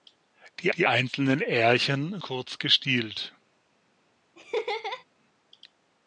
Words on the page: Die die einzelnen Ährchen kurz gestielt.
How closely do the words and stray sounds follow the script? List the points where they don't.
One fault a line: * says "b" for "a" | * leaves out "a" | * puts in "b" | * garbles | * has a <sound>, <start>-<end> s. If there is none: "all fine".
* has a laugh, 4.4-5.0 s